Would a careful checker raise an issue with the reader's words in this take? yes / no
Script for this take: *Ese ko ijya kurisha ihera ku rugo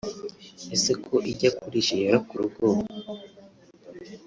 no